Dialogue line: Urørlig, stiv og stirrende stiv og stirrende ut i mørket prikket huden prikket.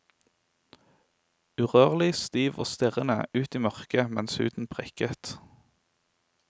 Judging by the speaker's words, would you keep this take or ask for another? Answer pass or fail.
fail